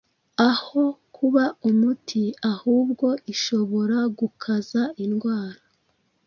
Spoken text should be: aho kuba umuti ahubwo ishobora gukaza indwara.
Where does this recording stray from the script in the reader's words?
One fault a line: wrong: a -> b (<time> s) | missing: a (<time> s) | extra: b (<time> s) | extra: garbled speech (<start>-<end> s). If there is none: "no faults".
no faults